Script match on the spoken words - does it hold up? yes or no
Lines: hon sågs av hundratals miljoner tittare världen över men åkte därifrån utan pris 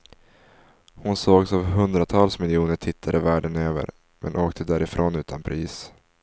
yes